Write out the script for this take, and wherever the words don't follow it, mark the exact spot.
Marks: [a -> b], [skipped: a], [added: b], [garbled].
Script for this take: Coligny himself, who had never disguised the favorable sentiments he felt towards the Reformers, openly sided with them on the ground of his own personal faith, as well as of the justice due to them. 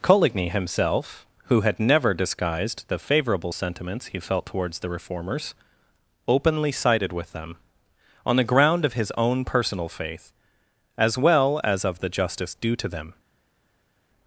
Coligny himself, who had never disguised the favorable sentiments he felt towards the Reformers, openly sided with them on the ground of his own personal faith, as well as of the justice due to them.